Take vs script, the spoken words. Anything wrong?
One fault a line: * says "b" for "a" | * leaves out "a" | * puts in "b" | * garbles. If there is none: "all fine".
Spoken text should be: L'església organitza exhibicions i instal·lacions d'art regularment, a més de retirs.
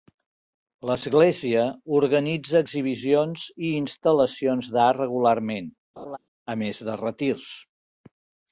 all fine